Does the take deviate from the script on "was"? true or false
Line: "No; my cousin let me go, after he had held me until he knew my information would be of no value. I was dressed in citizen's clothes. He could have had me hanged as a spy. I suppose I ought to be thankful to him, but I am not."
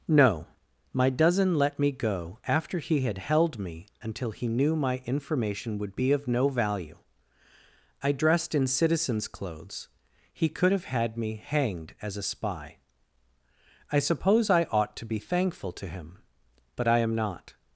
true